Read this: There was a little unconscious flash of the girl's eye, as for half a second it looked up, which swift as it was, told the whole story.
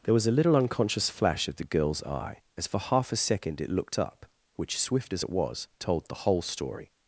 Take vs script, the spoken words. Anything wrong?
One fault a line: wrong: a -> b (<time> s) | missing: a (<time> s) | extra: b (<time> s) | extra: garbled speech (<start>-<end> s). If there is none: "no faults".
no faults